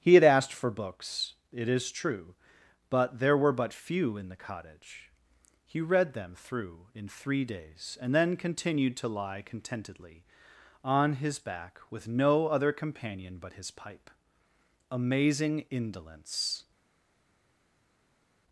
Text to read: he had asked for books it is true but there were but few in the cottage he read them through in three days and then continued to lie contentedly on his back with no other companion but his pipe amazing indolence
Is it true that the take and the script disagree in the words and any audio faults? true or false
false